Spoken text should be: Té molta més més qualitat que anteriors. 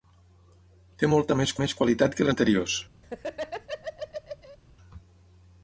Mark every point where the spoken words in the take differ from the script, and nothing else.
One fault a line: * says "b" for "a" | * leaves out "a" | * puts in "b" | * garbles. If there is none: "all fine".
all fine